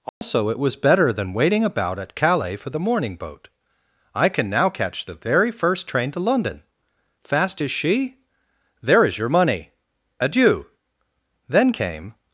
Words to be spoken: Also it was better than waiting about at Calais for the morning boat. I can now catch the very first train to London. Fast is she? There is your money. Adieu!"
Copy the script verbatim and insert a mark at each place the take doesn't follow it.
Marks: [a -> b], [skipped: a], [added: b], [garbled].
Also it was better than waiting about at Calais for the morning boat. I can now catch the very first train to London. Fast is she? There is your money. Adieu!" [added: Then came]